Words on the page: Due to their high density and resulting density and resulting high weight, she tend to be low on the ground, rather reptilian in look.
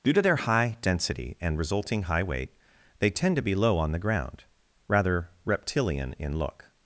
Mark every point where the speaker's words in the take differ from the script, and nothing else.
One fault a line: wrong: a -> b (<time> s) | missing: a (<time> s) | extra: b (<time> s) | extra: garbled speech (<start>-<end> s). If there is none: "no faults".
missing: density and resulting (2.0 s)
wrong: she -> they (3.0 s)